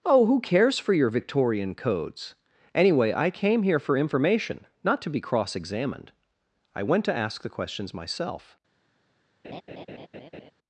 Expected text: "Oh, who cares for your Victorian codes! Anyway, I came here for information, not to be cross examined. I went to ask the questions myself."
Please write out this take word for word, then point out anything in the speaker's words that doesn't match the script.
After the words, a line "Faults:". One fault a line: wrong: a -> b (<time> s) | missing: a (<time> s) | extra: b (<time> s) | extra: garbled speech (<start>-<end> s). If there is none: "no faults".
"Oh, who cares for your Victorian codes! Anyway, I came here for information, not to be cross examined. I went to ask the questions myself."
Faults:
no faults